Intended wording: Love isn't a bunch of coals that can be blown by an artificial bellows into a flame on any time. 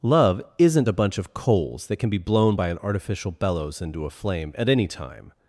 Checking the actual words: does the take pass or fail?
fail